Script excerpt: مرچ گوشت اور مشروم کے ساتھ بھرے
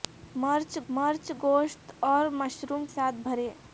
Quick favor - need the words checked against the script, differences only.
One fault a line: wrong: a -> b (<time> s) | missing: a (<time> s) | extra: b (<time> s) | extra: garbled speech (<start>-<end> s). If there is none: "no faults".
extra: مرچ (0.9 s)
missing: کے (2.9 s)